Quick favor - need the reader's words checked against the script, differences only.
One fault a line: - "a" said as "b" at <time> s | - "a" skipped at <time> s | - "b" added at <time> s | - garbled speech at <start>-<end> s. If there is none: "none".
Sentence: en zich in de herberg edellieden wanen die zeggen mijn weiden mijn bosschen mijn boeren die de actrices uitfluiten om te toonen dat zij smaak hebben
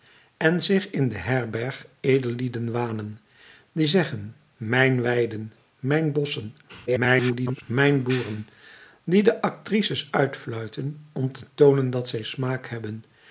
- garbled speech at 6.9-7.6 s